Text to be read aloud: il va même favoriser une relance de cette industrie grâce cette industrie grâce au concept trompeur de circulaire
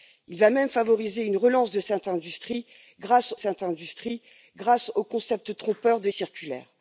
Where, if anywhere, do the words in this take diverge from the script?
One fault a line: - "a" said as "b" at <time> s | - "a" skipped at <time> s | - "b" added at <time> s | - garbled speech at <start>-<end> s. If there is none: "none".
none